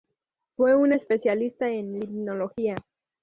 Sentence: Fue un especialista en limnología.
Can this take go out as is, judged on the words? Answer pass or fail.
pass